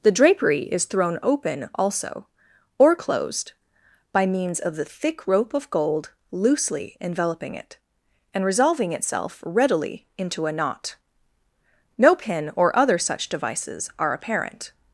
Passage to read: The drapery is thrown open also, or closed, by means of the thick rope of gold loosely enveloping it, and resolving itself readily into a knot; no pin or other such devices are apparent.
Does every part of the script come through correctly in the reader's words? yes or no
yes